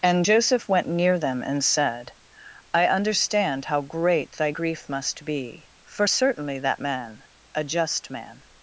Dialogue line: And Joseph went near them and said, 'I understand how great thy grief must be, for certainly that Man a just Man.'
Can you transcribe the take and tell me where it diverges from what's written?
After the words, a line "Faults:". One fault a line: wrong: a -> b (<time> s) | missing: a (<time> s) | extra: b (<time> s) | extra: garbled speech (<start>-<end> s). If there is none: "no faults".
And Joseph went near them and said, 'I understand how great thy grief must be, for certainly that Man a just Man.'
Faults:
no faults